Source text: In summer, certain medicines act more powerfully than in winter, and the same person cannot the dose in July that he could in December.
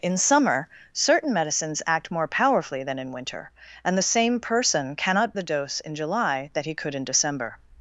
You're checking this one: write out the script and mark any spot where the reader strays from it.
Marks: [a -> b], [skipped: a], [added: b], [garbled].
In summer, certain medicines act more powerfully than in winter, and the same person cannot the dose in July that he could in December.